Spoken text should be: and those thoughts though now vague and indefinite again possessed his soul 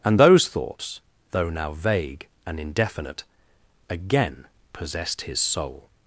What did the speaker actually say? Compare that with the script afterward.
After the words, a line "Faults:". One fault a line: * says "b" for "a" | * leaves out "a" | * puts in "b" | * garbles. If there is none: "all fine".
and those thoughts though now vague and indefinite again possessed his soul
Faults:
all fine